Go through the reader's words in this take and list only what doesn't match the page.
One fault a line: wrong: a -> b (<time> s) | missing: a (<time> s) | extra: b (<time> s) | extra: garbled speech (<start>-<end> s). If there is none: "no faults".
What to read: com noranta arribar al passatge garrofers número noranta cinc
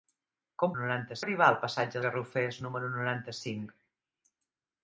no faults